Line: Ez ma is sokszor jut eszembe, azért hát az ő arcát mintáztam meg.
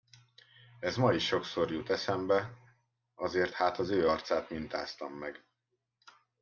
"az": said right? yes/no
yes